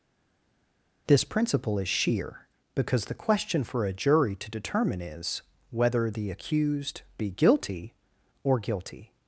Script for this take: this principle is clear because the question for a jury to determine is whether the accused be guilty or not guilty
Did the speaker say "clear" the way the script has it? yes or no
no